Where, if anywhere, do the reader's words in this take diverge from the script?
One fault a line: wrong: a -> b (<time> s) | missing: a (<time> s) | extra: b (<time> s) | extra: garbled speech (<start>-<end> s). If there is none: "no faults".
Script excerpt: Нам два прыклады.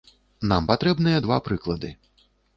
extra: патрэбныя (0.7 s)